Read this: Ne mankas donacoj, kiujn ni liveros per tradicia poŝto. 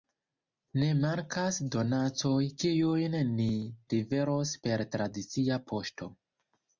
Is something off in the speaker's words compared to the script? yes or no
no